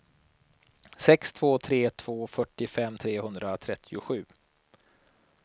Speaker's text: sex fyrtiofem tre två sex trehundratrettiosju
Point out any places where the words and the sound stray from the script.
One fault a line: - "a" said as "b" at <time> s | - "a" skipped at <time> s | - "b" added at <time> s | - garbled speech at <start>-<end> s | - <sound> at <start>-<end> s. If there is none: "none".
- "fyrtiofem" said as "två" at 1.3 s
- "sex" said as "fyrtiofem" at 2.3 s